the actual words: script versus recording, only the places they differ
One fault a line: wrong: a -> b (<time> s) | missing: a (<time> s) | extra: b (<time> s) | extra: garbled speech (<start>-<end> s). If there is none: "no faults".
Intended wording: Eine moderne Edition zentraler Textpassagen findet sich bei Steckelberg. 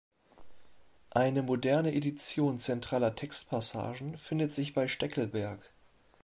no faults